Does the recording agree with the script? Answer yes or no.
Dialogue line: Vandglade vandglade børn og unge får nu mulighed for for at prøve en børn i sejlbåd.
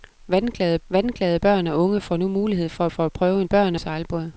yes